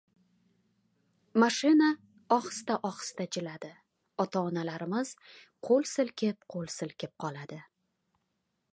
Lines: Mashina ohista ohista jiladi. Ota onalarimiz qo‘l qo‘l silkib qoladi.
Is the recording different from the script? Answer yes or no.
yes